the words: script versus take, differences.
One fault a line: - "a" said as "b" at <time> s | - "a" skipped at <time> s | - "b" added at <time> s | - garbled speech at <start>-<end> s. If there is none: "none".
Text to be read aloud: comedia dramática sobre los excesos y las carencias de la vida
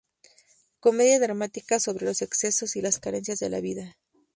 none